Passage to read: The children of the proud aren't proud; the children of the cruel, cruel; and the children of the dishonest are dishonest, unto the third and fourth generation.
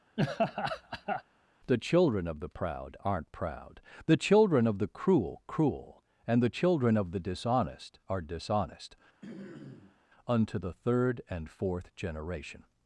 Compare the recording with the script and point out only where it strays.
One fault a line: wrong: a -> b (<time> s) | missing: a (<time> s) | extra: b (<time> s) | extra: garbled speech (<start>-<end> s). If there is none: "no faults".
no faults